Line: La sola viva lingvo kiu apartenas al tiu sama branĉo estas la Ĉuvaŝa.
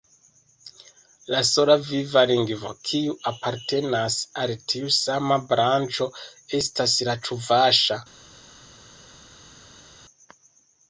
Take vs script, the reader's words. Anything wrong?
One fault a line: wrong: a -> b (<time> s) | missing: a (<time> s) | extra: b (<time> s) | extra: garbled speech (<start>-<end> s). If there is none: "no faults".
no faults